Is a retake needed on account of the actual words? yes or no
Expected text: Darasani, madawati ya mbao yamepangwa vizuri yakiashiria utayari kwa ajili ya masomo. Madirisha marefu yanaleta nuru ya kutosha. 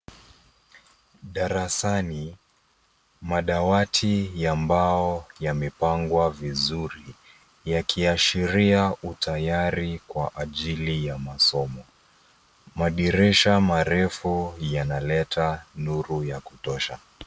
no